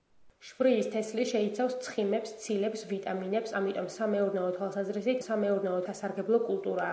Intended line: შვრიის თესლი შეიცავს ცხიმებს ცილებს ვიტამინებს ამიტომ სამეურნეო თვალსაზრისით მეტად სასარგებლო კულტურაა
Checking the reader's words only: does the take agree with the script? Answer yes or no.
no